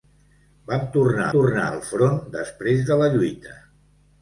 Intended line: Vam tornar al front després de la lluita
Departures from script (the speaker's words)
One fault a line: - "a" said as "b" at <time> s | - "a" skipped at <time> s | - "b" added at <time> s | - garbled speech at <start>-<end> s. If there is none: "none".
- "tornar" added at 1.3 s